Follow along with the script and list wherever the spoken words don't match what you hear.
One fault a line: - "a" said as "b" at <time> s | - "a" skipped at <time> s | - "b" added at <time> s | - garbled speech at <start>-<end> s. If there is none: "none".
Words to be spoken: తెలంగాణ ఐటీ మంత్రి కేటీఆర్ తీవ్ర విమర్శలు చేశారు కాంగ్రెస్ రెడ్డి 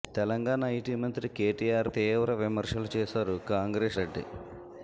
none